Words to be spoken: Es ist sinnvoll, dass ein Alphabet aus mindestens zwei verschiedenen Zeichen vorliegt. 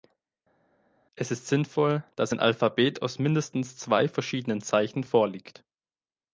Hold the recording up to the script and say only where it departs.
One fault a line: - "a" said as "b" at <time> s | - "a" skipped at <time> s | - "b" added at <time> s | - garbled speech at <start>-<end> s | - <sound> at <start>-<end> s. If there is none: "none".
none